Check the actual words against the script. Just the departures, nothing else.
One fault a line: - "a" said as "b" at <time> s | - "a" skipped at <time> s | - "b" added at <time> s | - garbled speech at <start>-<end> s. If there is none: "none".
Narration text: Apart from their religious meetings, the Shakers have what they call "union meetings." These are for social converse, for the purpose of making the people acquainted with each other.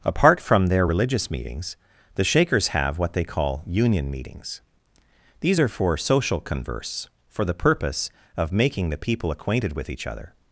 none